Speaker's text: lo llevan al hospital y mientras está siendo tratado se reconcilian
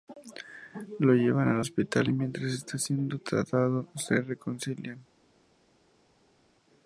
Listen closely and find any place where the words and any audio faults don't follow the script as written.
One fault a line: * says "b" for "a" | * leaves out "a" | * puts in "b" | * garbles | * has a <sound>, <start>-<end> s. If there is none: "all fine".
all fine